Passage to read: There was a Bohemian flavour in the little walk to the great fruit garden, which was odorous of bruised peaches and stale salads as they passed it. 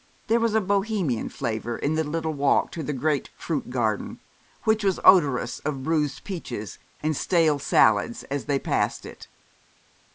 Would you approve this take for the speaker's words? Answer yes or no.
yes